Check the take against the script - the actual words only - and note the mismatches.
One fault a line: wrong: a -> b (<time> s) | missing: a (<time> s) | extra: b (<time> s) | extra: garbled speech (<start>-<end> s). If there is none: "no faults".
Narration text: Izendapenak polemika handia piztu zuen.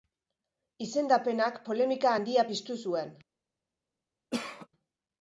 no faults